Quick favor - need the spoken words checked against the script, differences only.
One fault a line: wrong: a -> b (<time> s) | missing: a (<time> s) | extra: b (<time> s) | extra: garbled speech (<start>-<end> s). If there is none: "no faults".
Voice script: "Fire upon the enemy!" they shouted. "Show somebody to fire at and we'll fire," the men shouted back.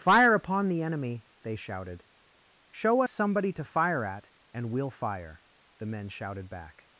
no faults